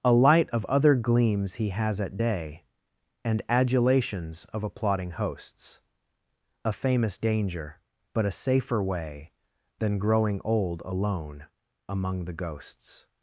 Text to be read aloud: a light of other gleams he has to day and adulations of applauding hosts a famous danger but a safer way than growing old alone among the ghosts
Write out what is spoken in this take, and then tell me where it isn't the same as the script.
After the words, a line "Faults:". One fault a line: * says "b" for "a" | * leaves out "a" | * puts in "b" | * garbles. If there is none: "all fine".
a light of other gleams he has at day and adulations of applauding hosts a famous danger but a safer way than growing old alone among the ghosts
Faults:
* says "at" for "to"